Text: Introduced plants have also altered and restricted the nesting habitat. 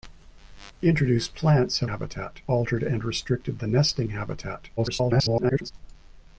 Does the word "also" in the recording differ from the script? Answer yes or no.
yes